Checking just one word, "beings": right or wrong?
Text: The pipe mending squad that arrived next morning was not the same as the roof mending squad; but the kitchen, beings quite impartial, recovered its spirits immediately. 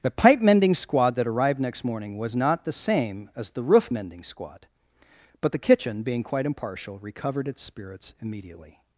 wrong